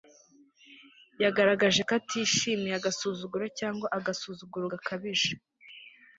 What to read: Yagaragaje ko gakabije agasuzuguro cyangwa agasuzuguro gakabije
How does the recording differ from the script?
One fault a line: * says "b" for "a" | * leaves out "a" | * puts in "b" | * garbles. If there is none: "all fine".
* says "atishimiye" for "gakabije"